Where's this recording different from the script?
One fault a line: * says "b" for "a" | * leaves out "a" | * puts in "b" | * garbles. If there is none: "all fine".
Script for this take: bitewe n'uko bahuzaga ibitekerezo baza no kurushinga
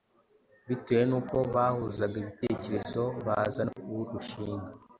all fine